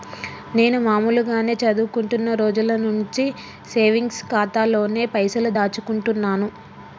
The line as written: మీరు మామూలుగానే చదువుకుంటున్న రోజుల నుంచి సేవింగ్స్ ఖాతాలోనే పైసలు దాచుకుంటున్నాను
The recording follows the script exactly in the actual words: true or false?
false